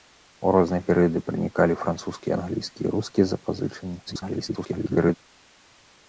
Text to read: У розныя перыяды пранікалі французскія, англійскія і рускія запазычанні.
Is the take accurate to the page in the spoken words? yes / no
no